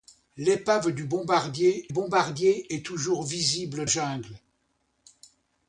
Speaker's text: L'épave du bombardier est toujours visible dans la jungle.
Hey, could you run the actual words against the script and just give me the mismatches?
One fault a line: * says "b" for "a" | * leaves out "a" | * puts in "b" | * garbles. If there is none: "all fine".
* puts in "bombardier"
* leaves out "dans la"